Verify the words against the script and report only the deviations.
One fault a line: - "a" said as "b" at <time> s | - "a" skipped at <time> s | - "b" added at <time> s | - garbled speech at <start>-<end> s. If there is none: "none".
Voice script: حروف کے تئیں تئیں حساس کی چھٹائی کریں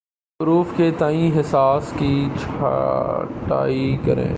- "تئیں" skipped at 1.3 s